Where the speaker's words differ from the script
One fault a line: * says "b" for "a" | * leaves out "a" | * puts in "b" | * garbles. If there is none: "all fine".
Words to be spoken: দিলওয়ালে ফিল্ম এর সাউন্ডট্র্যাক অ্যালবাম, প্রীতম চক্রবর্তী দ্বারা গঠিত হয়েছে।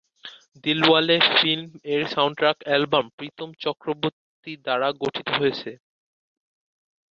all fine